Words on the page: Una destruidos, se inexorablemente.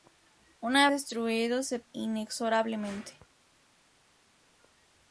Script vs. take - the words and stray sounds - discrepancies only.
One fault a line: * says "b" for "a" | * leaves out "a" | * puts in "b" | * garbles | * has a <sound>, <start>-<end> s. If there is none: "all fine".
all fine